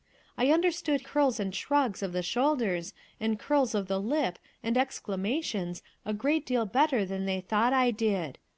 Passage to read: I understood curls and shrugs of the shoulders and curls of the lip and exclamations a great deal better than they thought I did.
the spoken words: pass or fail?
pass